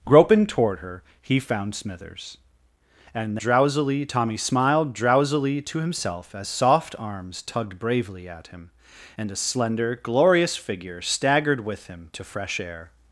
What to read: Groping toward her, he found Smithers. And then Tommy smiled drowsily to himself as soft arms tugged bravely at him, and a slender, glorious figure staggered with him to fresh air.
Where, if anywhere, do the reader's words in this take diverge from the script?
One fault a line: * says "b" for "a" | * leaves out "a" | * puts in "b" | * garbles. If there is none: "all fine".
* says "drowsily" for "then"